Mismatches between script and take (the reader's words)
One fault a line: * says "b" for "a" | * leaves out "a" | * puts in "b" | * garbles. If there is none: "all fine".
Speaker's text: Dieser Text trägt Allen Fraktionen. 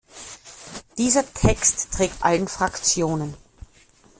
all fine